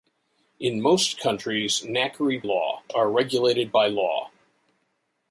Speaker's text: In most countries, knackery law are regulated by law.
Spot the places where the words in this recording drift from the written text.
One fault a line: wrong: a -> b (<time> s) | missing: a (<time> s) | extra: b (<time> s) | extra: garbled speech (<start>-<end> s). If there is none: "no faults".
no faults